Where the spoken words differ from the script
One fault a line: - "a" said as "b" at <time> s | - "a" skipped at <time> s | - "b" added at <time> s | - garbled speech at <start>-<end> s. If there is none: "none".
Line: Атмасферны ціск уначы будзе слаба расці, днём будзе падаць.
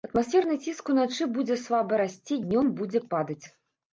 none